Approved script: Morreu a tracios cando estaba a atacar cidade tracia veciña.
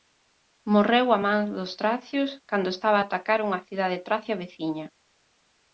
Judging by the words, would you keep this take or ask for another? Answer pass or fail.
fail